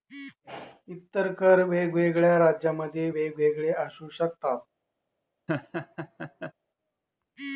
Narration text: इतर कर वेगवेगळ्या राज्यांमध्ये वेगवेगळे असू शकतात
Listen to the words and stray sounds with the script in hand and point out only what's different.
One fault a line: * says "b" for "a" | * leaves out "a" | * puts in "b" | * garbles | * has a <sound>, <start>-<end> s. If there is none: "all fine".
* has a laugh, 5.5-6.5 s